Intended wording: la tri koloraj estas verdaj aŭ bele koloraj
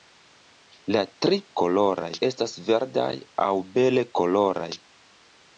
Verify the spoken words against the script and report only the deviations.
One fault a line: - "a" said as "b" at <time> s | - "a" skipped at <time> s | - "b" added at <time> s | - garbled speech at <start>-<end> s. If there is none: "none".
none